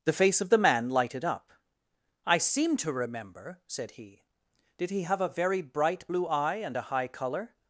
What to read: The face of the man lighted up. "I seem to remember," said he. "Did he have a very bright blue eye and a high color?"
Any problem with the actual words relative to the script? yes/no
no